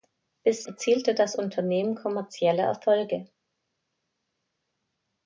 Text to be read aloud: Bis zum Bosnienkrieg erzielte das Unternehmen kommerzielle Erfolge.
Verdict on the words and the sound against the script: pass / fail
fail